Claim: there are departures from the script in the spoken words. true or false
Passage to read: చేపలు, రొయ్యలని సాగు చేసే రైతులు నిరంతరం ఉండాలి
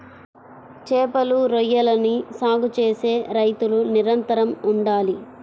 false